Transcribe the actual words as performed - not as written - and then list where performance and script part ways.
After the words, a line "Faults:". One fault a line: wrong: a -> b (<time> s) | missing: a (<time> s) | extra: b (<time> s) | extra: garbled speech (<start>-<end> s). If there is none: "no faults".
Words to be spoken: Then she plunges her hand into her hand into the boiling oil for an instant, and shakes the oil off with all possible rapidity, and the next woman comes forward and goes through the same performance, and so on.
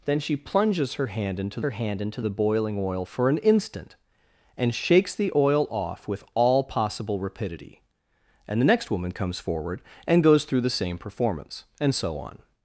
Then she plunges her hand into her hand into the boiling oil for an instant, and shakes the oil off with all possible rapidity, and the next woman comes forward and goes through the same performance, and so on.
Faults:
no faults